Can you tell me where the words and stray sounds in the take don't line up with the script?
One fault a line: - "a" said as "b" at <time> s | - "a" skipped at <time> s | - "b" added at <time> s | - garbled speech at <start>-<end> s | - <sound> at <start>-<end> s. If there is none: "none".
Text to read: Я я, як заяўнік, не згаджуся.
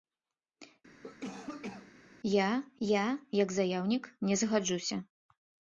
- cough at 1.0-1.9 s